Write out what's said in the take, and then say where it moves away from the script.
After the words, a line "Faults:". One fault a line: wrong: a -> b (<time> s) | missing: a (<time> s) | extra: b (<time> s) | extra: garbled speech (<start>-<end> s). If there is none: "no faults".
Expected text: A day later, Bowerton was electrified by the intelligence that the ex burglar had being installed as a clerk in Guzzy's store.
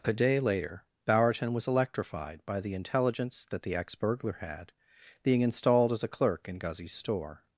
A day later, Bowerton was electrified by the intelligence that the ex burglar had being installed as a clerk in Guzzy's store.
Faults:
no faults